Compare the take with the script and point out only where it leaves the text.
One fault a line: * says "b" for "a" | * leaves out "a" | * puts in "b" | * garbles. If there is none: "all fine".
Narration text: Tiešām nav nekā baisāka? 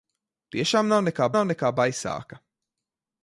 * puts in "nav nekā"